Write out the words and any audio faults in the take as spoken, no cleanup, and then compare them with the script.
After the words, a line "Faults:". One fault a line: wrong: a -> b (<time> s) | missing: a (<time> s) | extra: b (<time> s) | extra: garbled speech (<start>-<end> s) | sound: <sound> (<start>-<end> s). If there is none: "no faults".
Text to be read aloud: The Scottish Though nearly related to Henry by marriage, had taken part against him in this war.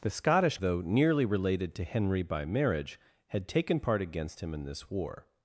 The Scottish Though nearly related to Henry by marriage, had taken part against him in this war.
Faults:
no faults